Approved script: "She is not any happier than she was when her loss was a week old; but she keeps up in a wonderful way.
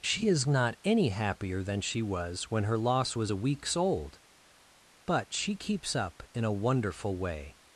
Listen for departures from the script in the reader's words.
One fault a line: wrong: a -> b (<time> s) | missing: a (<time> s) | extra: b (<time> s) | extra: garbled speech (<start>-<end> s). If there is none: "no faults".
wrong: week -> weeks (3.3 s)